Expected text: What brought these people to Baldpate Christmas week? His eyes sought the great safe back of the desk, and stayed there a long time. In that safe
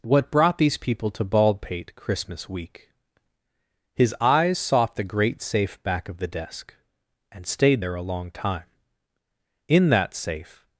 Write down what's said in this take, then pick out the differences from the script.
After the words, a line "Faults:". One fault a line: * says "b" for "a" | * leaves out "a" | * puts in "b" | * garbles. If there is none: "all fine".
What brought these people to Baldpate Christmas week? His eyes sought the great safe back of the desk, and stayed there a long time. In that safe
Faults:
all fine